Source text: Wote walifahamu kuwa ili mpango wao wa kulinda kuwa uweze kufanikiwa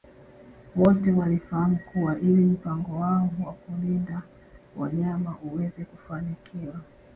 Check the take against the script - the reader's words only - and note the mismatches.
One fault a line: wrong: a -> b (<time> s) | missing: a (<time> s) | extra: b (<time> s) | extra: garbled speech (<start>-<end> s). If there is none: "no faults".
wrong: kuwa -> wanyama (4.8 s)